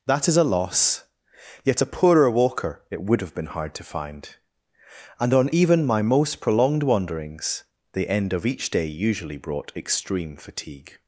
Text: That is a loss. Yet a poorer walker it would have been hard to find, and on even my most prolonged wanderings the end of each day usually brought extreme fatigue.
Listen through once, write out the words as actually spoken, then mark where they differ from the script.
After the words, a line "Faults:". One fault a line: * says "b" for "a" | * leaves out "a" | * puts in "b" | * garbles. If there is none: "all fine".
That is a loss. Yet a poorer walker it would have been hard to find, and on even my most prolonged wanderings the end of each day usually brought extreme fatigue.
Faults:
all fine